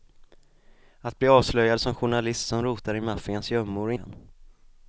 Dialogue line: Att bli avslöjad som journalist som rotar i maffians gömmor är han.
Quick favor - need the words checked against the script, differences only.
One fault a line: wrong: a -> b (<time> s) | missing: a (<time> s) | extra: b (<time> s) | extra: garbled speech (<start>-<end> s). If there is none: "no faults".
no faults